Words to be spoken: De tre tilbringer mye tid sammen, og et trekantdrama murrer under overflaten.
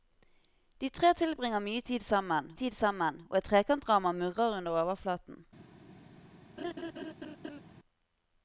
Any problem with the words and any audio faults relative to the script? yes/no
yes